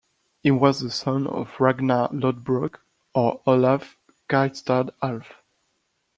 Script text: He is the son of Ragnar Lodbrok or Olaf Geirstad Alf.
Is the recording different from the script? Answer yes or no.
yes